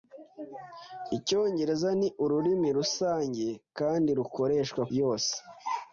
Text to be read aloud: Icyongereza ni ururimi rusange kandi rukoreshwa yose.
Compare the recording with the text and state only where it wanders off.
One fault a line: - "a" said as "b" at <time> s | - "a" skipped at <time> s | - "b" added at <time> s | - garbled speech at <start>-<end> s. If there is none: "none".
none